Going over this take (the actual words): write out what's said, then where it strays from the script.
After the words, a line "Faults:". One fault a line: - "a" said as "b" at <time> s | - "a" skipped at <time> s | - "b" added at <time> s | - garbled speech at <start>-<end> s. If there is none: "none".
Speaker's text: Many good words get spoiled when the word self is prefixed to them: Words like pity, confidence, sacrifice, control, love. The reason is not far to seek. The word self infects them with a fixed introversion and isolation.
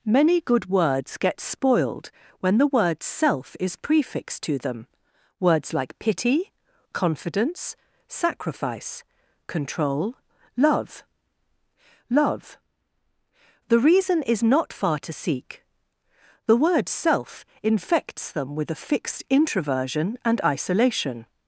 Many good words get spoiled when the word self is prefixed to them: Words like pity, confidence, sacrifice, control, love love. The reason is not far to seek. The word self infects them with a fixed introversion and isolation.
Faults:
- "love" added at 12.1 s